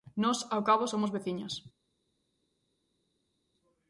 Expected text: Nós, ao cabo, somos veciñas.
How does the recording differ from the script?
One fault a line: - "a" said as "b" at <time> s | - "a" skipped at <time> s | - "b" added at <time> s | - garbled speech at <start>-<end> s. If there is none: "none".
none